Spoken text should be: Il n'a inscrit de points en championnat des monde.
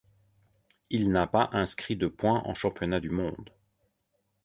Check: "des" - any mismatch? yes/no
yes